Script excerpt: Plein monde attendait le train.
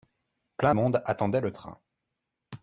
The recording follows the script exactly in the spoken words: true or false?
true